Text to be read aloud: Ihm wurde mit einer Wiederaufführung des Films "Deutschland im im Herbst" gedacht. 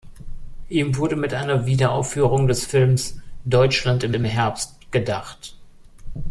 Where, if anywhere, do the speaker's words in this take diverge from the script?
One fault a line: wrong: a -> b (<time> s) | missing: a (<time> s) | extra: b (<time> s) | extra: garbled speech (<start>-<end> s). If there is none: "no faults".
no faults